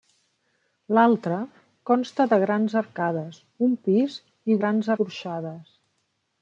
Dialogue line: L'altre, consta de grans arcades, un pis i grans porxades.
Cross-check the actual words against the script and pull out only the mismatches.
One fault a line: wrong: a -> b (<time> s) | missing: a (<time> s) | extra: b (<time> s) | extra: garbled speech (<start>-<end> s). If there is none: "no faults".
no faults